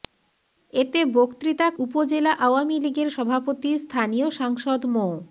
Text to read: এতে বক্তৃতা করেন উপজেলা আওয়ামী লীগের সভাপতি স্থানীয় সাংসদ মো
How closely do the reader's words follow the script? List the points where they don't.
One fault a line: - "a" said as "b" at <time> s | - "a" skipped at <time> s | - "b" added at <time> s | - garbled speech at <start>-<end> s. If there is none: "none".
- "করেন" skipped at 1.7 s